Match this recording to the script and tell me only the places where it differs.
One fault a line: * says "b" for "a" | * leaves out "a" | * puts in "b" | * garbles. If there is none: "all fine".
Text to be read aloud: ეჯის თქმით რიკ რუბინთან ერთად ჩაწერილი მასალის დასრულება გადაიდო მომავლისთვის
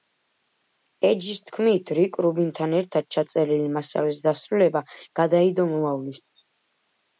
all fine